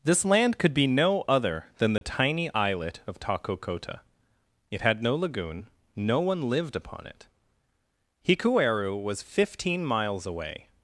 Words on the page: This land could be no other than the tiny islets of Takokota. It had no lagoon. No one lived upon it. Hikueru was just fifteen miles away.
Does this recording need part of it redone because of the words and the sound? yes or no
yes